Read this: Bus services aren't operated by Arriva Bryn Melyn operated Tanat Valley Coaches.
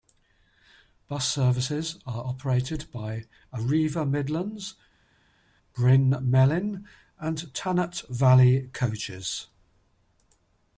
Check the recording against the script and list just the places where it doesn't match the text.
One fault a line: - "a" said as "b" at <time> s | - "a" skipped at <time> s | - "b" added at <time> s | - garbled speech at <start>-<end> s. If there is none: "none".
- "aren't" said as "are" at 2.1 s
- "Midlands" added at 4.1 s
- "operated" said as "and" at 7.2 s